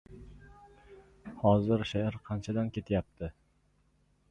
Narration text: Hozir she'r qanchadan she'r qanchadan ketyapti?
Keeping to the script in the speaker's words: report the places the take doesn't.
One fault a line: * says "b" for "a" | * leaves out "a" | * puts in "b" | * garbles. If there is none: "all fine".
* leaves out "she'r qanchadan"